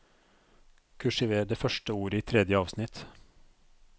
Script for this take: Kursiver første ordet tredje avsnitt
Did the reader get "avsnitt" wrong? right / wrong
right